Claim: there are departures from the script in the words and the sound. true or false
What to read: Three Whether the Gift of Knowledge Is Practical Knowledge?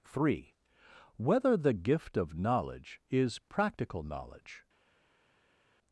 false